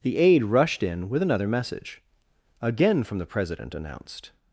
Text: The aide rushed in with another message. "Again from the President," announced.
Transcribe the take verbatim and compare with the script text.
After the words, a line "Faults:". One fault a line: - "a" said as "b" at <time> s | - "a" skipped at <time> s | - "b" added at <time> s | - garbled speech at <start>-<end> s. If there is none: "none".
The aide rushed in with another message. "Again from the President," announced.
Faults:
none